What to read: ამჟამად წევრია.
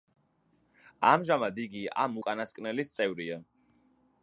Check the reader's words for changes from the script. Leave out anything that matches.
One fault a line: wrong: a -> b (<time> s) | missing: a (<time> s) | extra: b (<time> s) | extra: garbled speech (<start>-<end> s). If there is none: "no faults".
extra: იგი ამ უკანასკნელის (1.6 s)